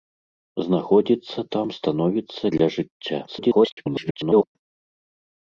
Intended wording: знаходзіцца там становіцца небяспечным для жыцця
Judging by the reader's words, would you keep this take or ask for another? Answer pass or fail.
fail